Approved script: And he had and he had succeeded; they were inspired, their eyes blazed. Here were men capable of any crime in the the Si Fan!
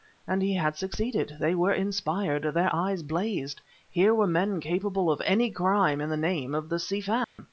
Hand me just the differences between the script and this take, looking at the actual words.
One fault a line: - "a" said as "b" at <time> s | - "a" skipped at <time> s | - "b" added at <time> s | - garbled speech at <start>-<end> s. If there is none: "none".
- "and he had" skipped at 0.8 s
- "name of" added at 6.2 s